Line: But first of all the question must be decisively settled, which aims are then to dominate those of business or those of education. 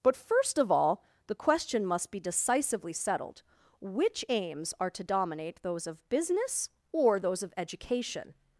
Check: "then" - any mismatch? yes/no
yes